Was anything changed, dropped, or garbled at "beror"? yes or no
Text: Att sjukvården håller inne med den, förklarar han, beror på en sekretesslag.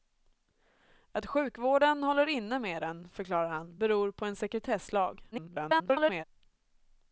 no